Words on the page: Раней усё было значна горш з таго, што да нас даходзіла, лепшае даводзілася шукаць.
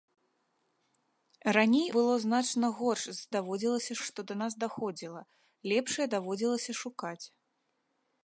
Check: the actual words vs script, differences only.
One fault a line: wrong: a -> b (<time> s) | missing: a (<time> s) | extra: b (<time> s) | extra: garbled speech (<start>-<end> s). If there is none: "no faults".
missing: усё (1.9 s)
wrong: таго -> даводзілася (3.4 s)